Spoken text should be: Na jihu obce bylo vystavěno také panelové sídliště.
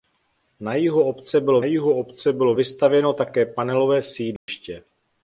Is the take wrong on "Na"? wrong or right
right